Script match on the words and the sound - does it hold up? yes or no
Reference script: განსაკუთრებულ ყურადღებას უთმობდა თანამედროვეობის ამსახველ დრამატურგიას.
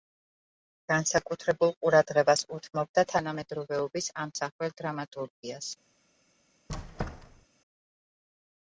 no